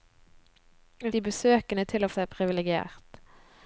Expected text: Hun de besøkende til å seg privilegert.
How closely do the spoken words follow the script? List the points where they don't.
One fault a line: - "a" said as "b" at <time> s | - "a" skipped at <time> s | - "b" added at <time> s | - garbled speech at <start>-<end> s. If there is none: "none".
none